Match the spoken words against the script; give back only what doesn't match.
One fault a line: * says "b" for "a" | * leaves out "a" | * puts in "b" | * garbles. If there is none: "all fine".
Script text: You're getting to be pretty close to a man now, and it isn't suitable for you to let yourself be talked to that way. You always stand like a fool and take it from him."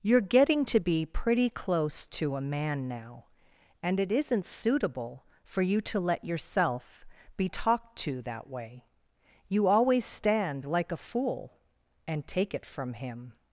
all fine